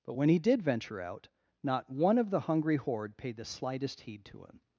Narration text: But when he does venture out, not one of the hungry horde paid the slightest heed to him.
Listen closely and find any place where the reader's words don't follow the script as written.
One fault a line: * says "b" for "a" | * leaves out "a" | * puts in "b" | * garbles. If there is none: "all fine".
* says "did" for "does"